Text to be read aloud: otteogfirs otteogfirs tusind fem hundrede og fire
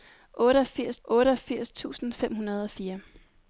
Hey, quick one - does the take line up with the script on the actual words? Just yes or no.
yes